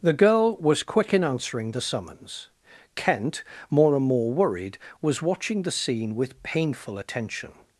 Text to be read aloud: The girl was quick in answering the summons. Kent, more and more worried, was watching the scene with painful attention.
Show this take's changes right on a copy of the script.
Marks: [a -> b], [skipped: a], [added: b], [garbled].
The girl was quick in answering the summons. Kent, more and more worried, was watching the scene with painful attention.